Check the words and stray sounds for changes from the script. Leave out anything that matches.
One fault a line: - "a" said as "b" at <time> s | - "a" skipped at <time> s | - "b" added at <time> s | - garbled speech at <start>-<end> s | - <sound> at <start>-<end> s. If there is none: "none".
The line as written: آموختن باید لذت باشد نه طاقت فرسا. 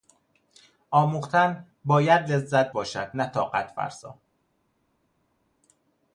none